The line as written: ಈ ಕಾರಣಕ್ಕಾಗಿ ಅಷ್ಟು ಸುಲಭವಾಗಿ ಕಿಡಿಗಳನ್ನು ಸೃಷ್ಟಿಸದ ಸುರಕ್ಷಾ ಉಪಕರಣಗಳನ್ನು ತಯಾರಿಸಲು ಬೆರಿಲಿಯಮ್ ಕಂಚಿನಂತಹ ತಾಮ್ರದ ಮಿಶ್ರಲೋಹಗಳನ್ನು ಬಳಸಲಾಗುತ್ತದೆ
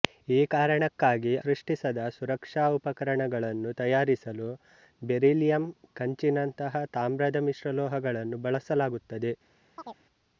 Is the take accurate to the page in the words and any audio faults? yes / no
no